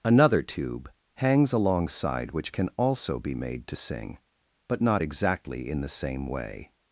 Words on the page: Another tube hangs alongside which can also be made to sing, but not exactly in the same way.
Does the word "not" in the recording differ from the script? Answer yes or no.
no